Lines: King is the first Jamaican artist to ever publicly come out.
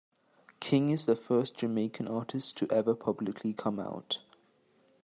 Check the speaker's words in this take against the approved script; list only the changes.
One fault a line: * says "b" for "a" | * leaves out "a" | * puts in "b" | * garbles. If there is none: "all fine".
all fine